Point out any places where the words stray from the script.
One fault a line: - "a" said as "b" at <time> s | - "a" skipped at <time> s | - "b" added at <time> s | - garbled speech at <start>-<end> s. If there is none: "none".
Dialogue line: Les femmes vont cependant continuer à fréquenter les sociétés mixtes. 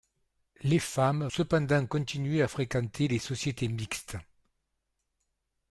- "vont" skipped at 1.3 s